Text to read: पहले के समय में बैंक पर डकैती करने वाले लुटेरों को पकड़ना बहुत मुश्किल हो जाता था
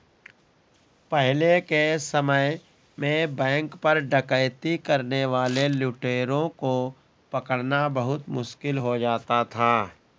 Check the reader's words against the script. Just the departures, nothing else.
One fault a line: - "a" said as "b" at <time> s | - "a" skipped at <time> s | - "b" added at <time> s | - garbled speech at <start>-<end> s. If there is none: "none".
none